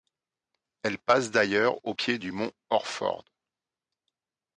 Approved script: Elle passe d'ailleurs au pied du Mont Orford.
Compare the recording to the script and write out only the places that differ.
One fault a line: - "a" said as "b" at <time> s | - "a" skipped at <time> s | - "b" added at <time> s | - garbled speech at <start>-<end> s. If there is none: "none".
none